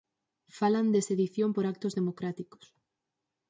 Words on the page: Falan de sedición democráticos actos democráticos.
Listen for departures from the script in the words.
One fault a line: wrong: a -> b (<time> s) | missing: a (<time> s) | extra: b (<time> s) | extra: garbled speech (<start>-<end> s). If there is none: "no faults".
wrong: democráticos -> por (1.5 s)